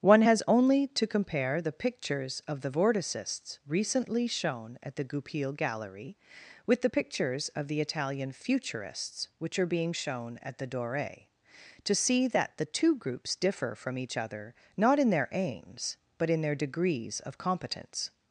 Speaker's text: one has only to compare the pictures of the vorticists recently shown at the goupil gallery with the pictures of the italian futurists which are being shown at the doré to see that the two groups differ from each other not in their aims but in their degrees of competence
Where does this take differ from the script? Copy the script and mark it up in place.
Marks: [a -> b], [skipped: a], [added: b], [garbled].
one has only to compare the pictures of the vorticists recently shown at the goupil gallery with the pictures of the italian futurists which are being shown at the doré to see that the two groups differ from each other not in their aims but in their degrees of competence